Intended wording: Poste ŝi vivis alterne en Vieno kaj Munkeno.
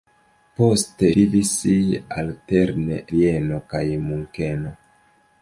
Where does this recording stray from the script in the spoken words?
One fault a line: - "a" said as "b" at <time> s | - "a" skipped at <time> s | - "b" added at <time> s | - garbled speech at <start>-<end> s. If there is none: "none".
- "ŝi" skipped at 1.1 s
- "en" skipped at 3.0 s